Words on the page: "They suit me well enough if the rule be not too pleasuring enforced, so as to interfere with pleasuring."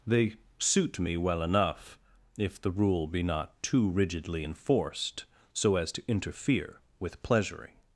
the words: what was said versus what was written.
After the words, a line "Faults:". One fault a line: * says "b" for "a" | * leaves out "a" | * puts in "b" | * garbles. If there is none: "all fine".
"They suit me well enough if the rule be not too rigidly enforced, so as to interfere with pleasuring."
Faults:
* says "rigidly" for "pleasuring"